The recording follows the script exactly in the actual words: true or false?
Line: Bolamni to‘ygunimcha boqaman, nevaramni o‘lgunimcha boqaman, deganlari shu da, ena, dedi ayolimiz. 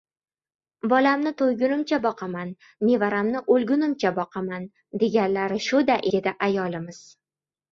false